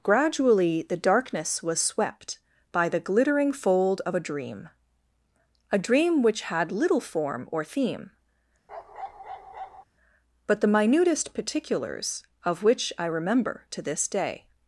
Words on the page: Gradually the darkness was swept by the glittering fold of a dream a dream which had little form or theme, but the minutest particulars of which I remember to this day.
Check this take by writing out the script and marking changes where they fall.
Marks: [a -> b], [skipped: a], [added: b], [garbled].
Gradually the darkness was swept by the glittering fold of a dream a dream which had little form or theme, but the minutest particulars of which I remember to this day.